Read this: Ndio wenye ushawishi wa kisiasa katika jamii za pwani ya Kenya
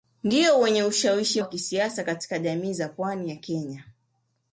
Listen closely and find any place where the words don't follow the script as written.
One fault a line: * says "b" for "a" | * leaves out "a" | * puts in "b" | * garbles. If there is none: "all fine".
all fine